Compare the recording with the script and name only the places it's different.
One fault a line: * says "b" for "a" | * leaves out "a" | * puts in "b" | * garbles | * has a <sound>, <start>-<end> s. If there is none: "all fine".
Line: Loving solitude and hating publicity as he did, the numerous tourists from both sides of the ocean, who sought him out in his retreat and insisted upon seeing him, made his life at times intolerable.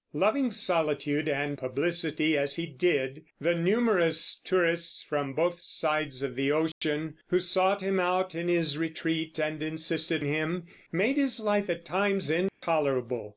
* leaves out "hating"
* has a dropout, 6.7-6.8 s
* leaves out "upon seeing"
* has a dropout, 12.5-12.6 s